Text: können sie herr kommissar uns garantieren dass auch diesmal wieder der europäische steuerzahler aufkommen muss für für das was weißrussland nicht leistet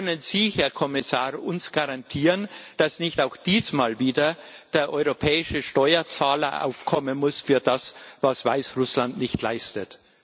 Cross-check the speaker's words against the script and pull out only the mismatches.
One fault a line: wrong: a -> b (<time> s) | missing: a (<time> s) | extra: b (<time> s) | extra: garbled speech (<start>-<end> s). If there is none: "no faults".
extra: nicht (3.0 s)
missing: für (7.6 s)